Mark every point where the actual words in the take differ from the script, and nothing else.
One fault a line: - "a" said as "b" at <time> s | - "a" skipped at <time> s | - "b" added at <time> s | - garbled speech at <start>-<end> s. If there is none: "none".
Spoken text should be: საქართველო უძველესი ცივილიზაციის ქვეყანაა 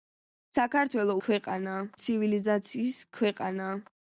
- "უძველესი" said as "ქვეყანაა" at 1.3 s